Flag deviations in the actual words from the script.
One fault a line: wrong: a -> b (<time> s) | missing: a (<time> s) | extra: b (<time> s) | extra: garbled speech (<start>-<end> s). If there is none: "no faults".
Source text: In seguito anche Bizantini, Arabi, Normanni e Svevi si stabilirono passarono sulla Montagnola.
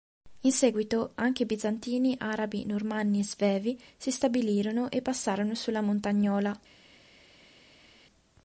extra: e (4.9 s)